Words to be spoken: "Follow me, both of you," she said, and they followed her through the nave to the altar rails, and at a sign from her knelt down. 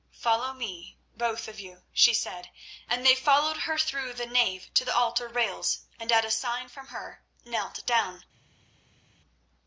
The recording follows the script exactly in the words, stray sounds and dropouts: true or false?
true